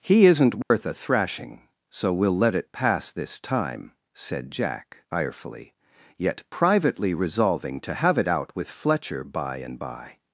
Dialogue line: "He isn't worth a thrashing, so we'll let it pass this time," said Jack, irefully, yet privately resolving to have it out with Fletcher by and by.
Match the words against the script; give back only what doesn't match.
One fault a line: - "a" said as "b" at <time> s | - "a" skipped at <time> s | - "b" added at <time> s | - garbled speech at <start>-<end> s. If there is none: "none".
none